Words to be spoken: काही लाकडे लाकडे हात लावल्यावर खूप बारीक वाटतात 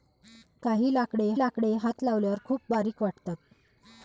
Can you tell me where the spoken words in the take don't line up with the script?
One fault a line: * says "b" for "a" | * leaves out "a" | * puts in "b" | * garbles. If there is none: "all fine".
all fine